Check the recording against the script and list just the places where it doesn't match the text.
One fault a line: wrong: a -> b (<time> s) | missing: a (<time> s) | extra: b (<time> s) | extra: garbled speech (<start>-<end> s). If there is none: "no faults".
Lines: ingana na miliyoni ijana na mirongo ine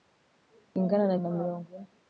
missing: miliyoni ijana (1.2 s)